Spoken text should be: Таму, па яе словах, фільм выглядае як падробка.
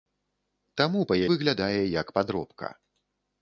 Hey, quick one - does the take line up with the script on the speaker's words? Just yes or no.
no